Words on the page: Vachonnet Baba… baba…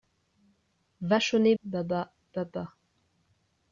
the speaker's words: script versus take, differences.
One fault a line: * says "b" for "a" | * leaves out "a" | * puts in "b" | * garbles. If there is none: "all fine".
all fine